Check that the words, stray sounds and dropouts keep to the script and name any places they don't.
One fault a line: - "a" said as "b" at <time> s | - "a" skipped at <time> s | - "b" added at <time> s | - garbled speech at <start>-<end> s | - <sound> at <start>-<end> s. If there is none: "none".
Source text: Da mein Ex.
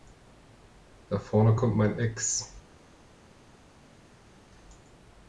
- "vorne kommt" added at 1.2 s